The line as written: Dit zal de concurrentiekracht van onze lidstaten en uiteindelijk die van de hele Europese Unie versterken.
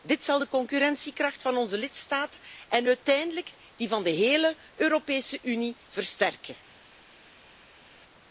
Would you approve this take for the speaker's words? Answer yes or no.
yes